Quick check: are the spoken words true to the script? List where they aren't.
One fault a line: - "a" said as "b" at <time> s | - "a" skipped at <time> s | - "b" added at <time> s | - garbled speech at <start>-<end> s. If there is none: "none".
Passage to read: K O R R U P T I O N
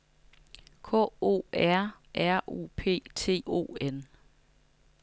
- "I" skipped at 3.4 s